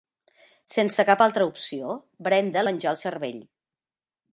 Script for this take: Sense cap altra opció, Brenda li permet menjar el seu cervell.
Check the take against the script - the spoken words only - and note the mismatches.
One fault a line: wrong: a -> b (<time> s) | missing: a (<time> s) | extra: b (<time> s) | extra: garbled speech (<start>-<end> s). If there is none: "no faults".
missing: li permet (2.6 s)
missing: seu (3.0 s)